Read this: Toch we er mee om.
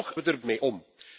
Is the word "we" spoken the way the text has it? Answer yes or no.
yes